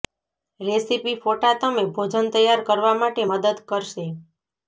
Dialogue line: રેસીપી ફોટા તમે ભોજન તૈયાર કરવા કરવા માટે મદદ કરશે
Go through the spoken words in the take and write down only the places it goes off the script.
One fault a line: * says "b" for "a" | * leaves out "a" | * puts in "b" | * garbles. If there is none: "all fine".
* leaves out "કરવા"